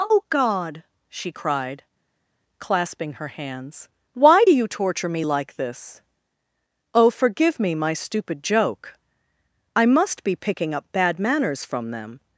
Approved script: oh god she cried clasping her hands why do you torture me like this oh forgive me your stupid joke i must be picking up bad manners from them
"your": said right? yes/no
no